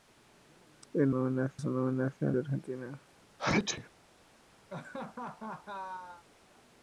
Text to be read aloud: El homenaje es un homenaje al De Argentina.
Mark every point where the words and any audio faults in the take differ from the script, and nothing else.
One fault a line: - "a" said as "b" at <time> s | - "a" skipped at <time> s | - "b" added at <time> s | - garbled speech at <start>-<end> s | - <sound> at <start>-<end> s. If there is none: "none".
- sneeze at 3.4-3.9 s
- laugh at 4.7-6.2 s